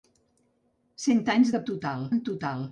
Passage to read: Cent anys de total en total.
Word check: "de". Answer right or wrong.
right